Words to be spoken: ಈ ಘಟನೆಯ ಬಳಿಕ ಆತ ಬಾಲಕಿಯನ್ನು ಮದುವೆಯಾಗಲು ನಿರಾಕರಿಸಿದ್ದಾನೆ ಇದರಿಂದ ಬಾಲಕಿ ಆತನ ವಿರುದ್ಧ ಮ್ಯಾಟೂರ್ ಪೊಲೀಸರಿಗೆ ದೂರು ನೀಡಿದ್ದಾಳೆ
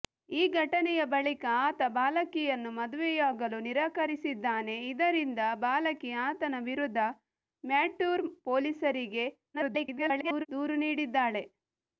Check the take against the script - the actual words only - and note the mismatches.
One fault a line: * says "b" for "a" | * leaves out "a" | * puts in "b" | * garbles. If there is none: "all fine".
* garbles